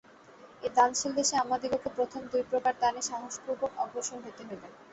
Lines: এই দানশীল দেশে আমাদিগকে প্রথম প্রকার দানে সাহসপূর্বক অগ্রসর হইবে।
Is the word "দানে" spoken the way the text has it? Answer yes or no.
yes